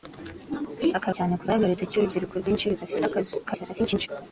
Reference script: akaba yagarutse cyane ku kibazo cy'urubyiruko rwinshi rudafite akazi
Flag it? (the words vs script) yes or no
yes